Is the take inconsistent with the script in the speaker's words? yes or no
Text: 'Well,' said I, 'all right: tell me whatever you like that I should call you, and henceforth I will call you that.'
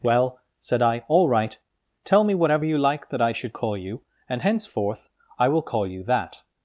no